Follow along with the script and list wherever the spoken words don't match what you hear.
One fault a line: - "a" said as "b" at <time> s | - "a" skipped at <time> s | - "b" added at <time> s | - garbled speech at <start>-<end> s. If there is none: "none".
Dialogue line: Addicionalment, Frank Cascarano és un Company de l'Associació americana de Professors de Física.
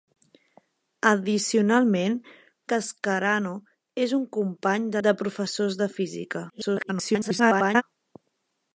- "Frank" skipped at 2.1 s
- "l'Associació americana" skipped at 5.0 s
- garbled speech at 6.5-7.8 s